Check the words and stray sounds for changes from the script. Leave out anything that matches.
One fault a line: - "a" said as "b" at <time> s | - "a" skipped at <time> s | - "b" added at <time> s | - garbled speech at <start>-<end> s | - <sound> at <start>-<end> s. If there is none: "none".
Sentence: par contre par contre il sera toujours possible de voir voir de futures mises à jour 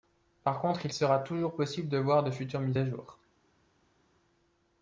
- "par contre" skipped at 0.8 s
- "voir" skipped at 2.2 s